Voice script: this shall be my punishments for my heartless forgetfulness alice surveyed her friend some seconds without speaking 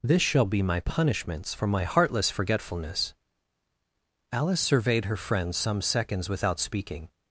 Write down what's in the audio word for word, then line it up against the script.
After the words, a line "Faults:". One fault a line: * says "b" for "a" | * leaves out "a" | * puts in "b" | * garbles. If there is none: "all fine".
this shall be my punishments for my heartless forgetfulness alice surveyed her friend some seconds without speaking
Faults:
all fine